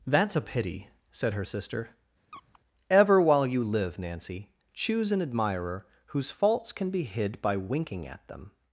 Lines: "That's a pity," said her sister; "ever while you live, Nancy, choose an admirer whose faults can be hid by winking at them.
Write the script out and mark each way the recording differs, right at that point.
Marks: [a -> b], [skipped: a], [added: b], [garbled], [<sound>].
"That's a pity," said her sister; [squeak] "ever while you live, Nancy, choose an admirer whose faults can be hid by winking at them.